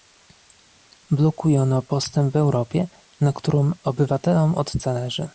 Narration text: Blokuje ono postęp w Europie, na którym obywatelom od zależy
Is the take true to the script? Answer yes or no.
yes